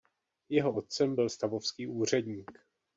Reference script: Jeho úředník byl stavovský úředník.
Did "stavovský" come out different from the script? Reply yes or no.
no